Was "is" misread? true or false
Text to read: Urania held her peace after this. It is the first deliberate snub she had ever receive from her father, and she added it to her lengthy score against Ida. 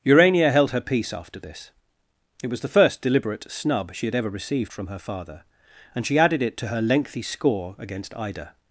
true